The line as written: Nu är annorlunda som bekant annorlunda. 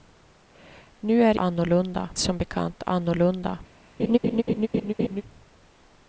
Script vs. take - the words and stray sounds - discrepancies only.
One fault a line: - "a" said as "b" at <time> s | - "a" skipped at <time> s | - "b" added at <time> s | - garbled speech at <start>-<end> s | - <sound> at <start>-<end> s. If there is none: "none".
- laugh at 4.0-5.2 s